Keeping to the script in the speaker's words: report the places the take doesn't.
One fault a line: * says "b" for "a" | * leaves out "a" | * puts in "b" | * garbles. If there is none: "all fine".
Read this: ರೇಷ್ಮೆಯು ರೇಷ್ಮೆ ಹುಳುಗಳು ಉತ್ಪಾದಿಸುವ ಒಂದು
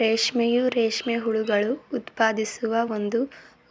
all fine